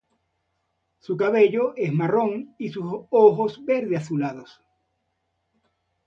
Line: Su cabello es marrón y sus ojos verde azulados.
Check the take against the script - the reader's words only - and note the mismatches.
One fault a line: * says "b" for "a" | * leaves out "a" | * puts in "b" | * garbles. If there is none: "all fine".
all fine